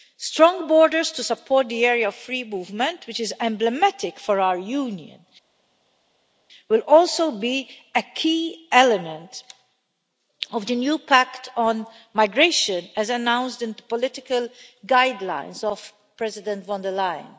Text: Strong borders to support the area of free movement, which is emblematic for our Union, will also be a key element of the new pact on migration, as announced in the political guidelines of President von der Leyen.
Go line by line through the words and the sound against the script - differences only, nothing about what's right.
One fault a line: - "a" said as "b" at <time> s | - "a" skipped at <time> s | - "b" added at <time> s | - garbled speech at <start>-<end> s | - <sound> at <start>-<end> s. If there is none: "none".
none